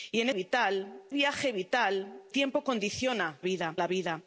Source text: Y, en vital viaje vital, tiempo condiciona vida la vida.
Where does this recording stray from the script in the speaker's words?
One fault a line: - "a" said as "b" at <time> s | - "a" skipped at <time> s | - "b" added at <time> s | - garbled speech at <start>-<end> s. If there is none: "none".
none